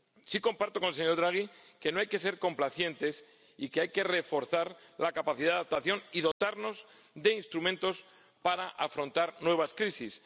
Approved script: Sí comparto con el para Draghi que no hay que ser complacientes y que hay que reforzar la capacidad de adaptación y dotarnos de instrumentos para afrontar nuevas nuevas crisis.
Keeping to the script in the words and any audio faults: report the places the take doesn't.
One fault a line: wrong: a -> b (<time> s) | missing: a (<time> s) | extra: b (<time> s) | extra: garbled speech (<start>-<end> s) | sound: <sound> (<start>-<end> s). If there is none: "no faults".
wrong: para -> señor (0.9 s)
sound: dropout (6.3-6.4 s)
missing: nuevas (9.7 s)